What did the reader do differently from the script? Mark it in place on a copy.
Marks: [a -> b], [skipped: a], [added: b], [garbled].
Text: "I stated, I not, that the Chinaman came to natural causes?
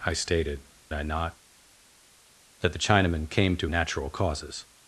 "I stated, I not, that the Chinaman came to natural causes?